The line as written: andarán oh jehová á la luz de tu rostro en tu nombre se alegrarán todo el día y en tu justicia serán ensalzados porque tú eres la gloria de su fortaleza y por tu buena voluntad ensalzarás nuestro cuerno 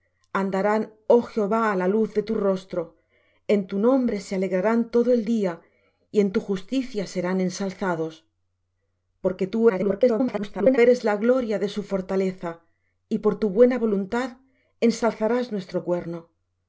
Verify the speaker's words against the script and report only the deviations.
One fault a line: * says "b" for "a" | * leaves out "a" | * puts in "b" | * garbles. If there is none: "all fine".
* garbles